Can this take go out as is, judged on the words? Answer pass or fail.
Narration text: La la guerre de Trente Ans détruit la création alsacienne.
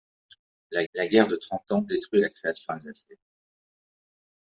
pass